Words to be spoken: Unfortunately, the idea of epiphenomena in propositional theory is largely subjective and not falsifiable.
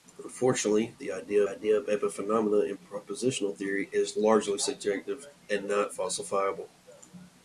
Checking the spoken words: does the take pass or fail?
fail